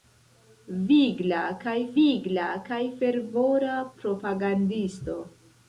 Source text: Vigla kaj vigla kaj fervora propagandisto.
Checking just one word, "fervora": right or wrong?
right